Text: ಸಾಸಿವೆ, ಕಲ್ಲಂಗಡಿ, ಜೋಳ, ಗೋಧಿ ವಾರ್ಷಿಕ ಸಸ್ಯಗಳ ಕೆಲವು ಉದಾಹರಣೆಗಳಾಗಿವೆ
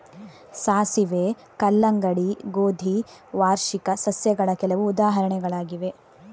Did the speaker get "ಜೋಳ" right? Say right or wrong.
wrong